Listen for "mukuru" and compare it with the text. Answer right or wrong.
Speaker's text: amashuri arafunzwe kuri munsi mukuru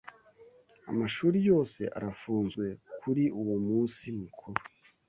right